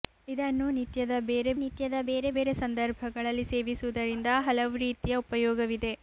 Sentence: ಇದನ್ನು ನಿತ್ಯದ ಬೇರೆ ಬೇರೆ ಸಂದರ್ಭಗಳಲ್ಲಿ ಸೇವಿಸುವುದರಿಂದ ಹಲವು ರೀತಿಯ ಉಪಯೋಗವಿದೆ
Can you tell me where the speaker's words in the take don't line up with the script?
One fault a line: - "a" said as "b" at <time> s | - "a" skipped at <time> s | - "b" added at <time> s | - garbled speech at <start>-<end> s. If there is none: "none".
- "ನಿತ್ಯದ ಬೇರೆ" added at 1.6 s